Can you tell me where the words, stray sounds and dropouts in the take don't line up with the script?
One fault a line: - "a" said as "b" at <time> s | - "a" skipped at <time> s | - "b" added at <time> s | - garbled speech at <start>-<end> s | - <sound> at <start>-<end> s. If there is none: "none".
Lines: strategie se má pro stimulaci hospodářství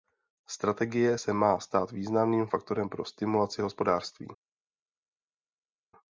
- "stát významným faktorem" added at 1.6 s